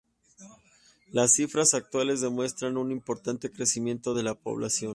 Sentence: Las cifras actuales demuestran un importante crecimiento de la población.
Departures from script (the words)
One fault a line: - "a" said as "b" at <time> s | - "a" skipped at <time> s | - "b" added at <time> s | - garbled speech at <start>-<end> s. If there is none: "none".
none